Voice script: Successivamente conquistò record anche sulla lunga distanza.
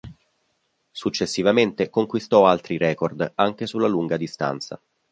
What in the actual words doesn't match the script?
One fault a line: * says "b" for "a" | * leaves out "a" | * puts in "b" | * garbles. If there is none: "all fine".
* puts in "altri"